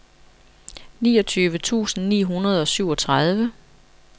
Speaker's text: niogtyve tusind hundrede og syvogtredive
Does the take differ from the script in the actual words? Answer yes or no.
yes